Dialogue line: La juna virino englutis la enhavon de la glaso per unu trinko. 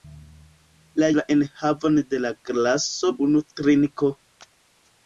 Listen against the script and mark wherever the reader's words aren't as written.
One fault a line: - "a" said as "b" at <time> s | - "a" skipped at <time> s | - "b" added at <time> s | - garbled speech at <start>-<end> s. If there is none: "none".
- "juna virino englutis" skipped at 1.1 s
- "per" skipped at 3.1 s